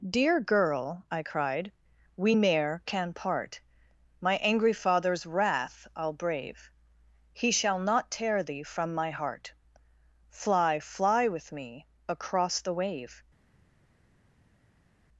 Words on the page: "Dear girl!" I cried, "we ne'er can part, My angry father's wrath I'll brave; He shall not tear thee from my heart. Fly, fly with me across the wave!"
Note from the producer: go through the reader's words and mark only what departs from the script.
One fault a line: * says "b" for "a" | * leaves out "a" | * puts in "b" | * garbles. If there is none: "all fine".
all fine